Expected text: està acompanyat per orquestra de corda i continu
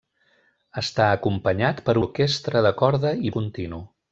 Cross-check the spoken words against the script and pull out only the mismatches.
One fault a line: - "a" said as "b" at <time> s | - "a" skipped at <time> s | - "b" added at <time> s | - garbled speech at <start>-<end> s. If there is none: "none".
none